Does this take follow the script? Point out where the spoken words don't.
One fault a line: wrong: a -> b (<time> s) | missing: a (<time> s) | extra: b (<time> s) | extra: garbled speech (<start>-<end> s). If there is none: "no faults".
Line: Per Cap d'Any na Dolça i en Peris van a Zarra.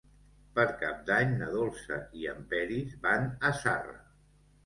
no faults